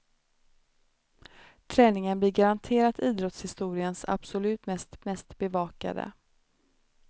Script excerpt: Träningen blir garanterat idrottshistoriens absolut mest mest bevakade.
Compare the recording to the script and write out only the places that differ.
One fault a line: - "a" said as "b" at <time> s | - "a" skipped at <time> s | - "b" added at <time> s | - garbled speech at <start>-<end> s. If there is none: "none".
none